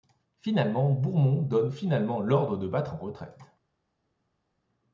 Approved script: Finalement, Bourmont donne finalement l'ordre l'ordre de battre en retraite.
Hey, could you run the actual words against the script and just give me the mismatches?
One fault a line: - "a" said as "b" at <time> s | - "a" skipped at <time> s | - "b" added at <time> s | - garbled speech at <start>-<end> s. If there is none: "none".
- "l'ordre" skipped at 2.6 s